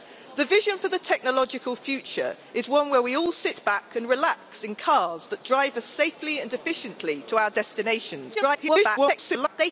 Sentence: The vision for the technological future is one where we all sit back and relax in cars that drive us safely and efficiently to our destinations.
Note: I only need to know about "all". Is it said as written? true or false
true